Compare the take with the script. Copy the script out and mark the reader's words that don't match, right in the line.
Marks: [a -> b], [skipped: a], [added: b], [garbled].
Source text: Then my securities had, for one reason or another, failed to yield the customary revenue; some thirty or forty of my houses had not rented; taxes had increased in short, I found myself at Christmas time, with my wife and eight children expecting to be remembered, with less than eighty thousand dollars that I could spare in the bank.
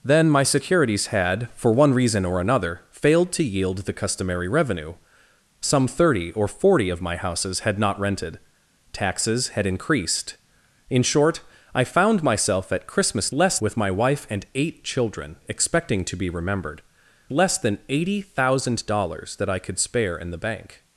Then my securities had, for one reason or another, failed to yield the customary revenue; some thirty or forty of my houses had not rented; taxes had increased in short, I found myself at Christmas [time, -> less] with my wife and eight children expecting to be remembered, [skipped: with] less than eighty thousand dollars that I could spare in the bank.